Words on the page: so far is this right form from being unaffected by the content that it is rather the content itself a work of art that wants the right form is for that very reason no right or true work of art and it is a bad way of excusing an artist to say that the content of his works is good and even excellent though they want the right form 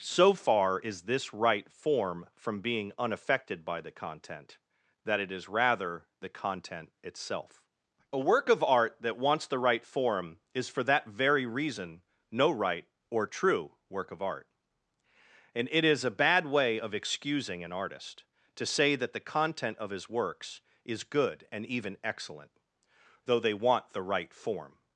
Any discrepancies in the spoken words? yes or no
no